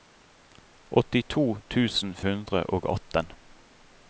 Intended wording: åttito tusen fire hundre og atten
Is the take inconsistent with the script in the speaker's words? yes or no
yes